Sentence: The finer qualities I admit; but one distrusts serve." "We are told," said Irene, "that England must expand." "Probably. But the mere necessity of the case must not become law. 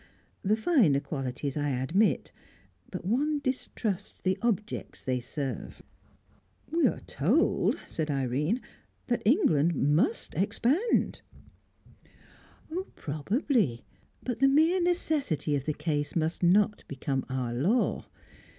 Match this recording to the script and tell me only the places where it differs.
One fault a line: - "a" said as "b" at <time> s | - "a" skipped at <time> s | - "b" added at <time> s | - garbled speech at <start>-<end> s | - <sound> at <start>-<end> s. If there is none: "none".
- "the objects they" added at 4.2 s
- "our" added at 17.3 s